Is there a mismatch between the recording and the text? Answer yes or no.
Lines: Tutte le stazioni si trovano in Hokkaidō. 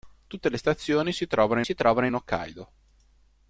yes